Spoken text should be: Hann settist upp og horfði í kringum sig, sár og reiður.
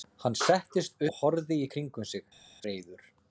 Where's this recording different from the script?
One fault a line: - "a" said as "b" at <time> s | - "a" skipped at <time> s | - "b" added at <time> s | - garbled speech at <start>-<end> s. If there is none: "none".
- "upp" skipped at 1.0 s
- "sár og" skipped at 2.2 s